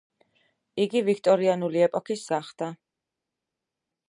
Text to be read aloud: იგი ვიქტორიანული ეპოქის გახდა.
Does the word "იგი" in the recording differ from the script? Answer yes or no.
no